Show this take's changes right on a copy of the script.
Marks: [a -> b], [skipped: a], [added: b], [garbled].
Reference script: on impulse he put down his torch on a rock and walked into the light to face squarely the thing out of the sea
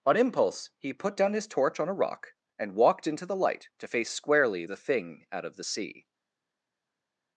on impulse he put down his torch on a rock and walked into the light to face squarely the thing out of the sea